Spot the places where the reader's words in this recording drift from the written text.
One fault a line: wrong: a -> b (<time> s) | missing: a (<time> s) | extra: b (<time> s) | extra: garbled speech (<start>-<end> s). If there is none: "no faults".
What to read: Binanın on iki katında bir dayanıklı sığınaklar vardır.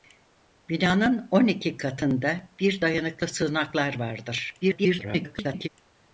extra: garbled speech (4.6-5.7 s)